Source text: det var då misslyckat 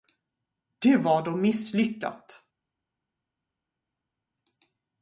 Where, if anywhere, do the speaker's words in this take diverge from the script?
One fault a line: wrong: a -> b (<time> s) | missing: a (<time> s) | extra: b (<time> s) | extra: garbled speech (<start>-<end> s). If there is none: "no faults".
no faults